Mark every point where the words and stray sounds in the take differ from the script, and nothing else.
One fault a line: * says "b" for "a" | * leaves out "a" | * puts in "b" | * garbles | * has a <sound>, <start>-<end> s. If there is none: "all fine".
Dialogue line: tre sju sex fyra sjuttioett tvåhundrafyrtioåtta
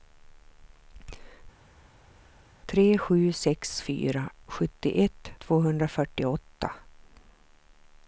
all fine